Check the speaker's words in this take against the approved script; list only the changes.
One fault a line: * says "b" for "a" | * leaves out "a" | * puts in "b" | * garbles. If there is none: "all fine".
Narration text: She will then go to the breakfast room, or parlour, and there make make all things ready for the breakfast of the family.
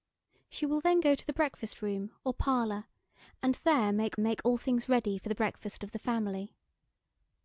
all fine